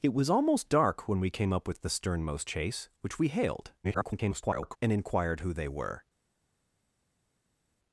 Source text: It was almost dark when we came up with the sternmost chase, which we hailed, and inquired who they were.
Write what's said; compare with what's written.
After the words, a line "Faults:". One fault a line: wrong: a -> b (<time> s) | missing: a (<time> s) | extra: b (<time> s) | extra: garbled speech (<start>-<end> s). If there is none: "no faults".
It was almost dark when we came up with the sternmost chase, which we hailed, [garbled] and inquired who they were.
Faults:
extra: garbled speech (3.8-4.8 s)